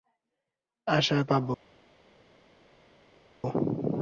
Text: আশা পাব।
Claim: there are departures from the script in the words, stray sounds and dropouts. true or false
false